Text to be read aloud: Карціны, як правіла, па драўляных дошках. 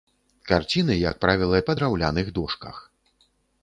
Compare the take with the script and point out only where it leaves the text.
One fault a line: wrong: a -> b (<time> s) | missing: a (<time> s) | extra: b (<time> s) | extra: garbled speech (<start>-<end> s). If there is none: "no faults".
no faults